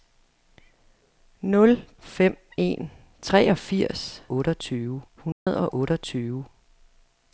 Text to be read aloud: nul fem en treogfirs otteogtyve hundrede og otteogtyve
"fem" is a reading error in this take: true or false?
false